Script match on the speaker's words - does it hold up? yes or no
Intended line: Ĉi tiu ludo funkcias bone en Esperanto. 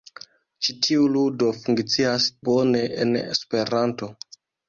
yes